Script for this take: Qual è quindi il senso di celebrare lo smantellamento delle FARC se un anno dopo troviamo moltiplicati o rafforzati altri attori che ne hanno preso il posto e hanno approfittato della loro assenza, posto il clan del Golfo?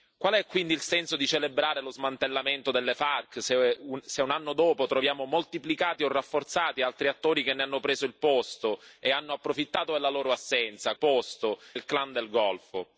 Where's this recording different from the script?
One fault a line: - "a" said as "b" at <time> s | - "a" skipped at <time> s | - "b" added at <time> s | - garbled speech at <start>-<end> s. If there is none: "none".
none